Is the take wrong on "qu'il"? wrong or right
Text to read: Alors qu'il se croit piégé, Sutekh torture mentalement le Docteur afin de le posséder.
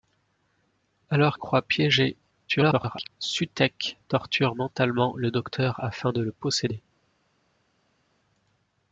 wrong